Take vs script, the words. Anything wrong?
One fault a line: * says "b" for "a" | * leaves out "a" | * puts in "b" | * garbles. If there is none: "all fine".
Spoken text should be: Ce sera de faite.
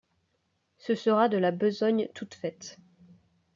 * puts in "la besogne toute"